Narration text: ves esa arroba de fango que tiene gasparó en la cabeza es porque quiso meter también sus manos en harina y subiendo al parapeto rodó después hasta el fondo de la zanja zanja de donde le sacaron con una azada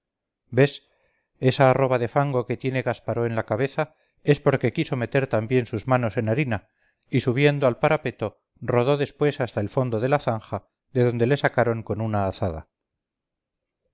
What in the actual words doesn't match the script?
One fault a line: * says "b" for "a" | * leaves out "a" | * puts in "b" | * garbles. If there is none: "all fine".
* leaves out "zanja"